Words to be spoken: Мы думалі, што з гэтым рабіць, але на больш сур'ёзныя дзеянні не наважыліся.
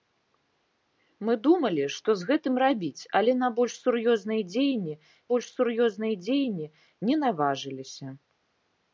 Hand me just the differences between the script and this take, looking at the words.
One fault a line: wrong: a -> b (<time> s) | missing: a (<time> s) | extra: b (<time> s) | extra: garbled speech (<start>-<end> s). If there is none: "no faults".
extra: больш сур'ёзныя дзеянні (5.3 s)